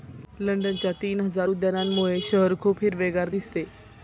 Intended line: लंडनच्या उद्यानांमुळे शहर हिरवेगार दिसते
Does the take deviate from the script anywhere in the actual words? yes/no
yes